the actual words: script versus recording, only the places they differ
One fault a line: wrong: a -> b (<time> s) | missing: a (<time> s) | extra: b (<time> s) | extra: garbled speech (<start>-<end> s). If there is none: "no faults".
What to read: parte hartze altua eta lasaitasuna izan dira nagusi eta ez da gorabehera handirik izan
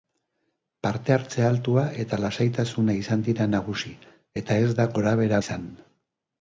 missing: handirik (5.4 s)